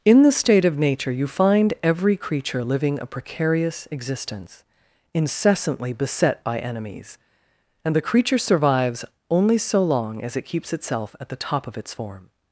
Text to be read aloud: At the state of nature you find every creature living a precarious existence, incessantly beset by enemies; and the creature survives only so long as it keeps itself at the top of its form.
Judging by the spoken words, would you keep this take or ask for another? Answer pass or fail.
fail